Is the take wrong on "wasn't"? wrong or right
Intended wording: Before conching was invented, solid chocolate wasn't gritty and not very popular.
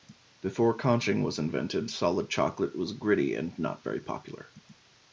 wrong